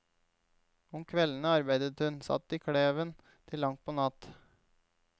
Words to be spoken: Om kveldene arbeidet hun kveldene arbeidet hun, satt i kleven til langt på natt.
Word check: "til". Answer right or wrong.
right